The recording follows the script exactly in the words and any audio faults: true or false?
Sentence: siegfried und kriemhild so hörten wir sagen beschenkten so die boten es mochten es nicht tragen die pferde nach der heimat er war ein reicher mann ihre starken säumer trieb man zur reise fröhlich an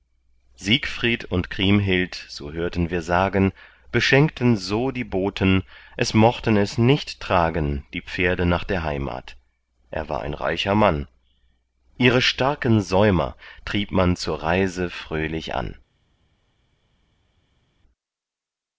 true